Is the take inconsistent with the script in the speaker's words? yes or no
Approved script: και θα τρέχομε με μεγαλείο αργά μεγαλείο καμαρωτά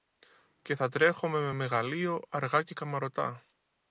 yes